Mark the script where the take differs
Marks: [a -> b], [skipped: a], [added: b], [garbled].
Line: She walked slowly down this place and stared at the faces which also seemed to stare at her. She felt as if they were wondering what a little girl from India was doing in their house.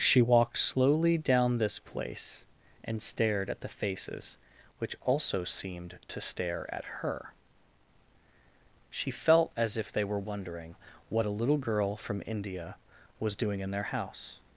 She walked slowly down this place and stared at the faces which also seemed to stare at her. She felt as if they were wondering what a little girl from India was doing in their house.